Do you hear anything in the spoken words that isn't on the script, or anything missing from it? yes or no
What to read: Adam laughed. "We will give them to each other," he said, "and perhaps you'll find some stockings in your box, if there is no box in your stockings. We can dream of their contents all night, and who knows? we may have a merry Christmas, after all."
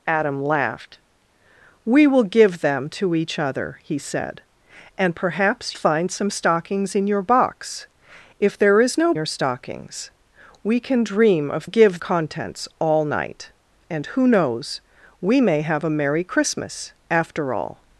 yes